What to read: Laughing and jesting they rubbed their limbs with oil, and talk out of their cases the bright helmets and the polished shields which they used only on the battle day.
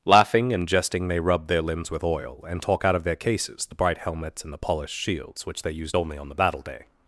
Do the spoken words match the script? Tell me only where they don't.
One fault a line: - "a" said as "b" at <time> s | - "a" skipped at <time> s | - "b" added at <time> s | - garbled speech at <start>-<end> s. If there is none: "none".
none